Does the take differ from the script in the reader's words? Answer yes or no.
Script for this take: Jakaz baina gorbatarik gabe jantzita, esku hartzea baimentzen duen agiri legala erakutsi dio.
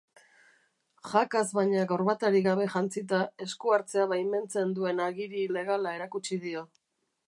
no